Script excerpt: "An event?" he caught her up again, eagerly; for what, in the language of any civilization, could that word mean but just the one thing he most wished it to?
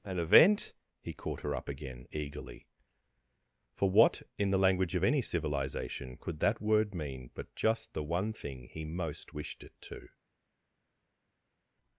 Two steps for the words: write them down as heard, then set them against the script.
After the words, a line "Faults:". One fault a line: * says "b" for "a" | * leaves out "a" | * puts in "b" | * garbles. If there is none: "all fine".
"An event?" he caught her up again, eagerly; for what, in the language of any civilization, could that word mean but just the one thing he most wished it to?
Faults:
all fine